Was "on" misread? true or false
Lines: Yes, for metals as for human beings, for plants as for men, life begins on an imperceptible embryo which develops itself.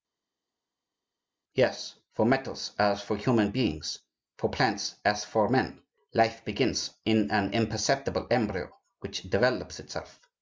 true